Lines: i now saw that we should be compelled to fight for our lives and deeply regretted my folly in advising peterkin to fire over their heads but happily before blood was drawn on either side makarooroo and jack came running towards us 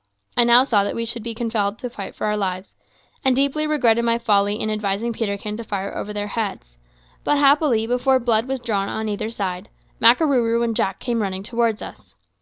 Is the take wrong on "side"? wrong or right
right